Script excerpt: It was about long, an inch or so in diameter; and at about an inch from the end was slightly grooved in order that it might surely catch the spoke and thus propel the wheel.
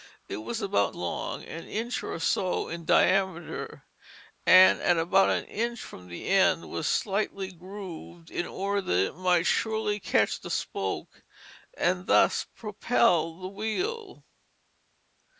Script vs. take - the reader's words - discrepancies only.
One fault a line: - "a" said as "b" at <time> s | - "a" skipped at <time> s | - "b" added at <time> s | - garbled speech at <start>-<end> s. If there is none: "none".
none